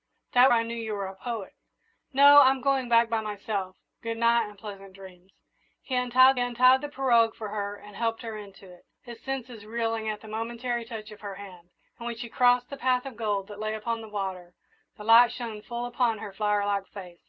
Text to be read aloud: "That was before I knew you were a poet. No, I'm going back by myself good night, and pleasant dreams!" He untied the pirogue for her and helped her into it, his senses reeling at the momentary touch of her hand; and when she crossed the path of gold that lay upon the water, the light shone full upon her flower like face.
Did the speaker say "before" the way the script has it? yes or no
no